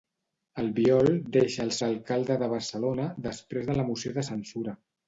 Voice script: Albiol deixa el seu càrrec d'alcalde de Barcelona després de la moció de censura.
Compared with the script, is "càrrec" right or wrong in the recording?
wrong